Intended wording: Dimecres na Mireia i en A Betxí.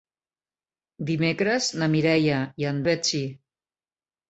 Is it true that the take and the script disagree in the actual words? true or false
false